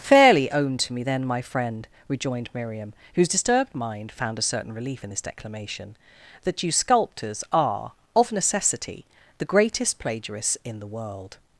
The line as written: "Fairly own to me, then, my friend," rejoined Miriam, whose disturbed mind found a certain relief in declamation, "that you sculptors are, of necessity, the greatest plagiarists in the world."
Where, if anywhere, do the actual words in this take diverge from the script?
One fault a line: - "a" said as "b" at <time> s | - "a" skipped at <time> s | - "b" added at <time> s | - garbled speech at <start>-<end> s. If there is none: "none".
- "this" added at 5.1 s